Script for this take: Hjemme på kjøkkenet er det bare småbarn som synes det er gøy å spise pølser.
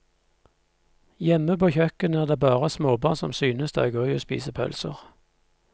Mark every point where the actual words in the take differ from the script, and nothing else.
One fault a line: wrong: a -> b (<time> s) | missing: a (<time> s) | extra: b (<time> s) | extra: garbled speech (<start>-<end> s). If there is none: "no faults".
no faults